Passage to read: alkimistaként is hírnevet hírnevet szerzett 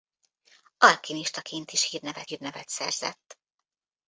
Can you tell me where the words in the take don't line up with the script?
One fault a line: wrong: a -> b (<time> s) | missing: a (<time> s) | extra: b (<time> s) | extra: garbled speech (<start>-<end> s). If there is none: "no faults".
no faults